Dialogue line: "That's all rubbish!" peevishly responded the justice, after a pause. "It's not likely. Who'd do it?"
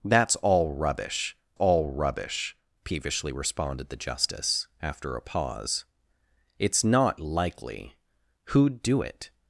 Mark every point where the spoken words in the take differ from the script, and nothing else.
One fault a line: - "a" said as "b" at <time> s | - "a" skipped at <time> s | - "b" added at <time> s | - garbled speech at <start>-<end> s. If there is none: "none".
- "all rubbish" added at 1.5 s